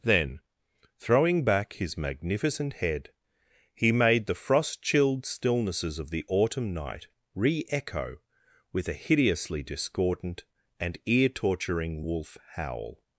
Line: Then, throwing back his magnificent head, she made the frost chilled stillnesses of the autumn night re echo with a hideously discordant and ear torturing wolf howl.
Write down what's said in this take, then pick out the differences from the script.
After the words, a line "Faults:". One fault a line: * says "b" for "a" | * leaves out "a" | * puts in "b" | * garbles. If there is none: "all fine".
Then, throwing back his magnificent head, he made the frost chilled stillnesses of the autumn night re echo with a hideously discordant and ear torturing wolf howl.
Faults:
* says "he" for "she"